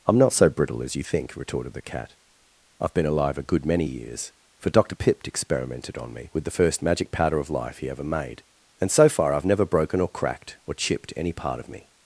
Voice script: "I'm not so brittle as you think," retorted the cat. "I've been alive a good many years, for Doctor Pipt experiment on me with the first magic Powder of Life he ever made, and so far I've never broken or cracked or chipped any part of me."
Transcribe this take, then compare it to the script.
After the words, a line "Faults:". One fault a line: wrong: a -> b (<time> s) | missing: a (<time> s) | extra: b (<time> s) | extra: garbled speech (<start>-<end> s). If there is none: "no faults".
"I'm not so brittle as you think," retorted the cat. "I've been alive a good many years, for Doctor Pipt experimented on me with the first magic Powder of Life he ever made, and so far I've never broken or cracked or chipped any part of me."
Faults:
wrong: experiment -> experimented (5.3 s)